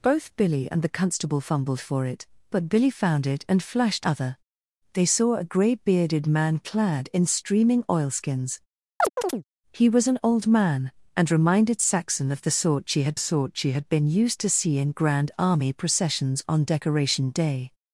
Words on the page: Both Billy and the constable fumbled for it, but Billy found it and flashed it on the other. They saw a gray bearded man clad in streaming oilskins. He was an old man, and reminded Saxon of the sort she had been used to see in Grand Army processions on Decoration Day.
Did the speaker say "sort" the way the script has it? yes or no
yes